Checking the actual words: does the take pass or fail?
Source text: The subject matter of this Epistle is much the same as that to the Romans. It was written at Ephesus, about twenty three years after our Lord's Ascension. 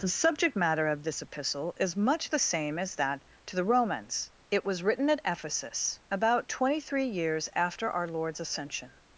pass